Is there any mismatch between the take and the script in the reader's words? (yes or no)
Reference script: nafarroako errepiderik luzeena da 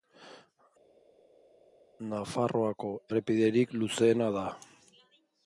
no